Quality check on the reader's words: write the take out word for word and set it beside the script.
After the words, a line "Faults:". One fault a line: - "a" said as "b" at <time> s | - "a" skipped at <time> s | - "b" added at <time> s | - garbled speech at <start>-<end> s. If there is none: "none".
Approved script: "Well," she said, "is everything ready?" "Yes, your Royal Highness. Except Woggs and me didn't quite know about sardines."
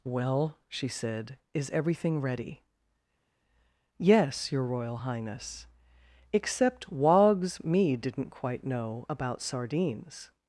"Well," she said, "is everything ready?" "Yes, your Royal Highness. Except Woggs me didn't quite know about sardines."
Faults:
- "and" skipped at 7.6 s